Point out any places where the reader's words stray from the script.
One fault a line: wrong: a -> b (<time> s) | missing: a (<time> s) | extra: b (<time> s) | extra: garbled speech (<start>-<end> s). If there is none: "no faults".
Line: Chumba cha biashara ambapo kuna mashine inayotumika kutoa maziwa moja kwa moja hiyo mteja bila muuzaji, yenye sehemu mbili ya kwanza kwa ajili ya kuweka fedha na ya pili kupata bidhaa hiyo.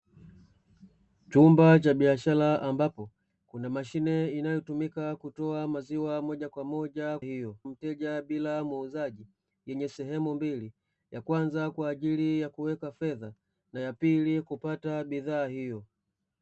no faults